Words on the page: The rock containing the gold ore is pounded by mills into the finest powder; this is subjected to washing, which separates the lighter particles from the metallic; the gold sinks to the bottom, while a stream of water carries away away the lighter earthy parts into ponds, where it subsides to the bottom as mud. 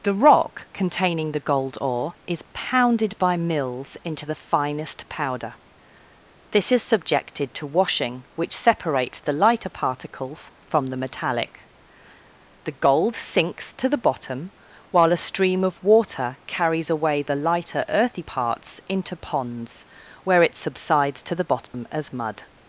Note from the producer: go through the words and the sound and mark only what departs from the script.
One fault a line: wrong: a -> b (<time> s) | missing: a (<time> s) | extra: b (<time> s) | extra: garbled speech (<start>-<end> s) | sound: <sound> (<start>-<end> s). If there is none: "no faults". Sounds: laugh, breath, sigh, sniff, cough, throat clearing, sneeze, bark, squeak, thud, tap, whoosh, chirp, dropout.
missing: away (17.2 s)
sound: dropout (21.7-21.7 s)